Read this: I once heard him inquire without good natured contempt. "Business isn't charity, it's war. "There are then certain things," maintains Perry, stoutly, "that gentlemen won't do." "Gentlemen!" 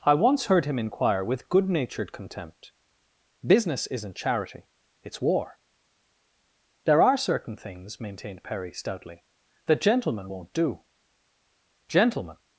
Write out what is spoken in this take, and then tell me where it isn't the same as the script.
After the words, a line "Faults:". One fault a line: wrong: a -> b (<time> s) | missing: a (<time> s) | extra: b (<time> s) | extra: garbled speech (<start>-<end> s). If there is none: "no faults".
I once heard him inquire with good natured contempt. "Business isn't charity, it's war. "There are certain things," maintained Perry, stoutly, "that gentlemen won't do." "Gentlemen!"
Faults:
wrong: without -> with (1.2 s)
missing: then (7.2 s)
wrong: maintains -> maintained (8.0 s)